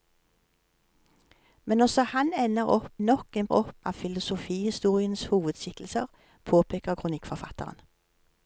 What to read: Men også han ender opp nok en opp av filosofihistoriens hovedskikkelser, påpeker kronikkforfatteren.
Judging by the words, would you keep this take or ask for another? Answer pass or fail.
pass